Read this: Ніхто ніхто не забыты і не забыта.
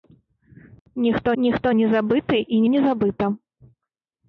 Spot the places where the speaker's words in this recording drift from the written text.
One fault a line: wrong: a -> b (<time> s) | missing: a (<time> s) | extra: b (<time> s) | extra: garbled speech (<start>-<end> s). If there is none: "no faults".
no faults